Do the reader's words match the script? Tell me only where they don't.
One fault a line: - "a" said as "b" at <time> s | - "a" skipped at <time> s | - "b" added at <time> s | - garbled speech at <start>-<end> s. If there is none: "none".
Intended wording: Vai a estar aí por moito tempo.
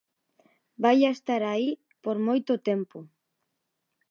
none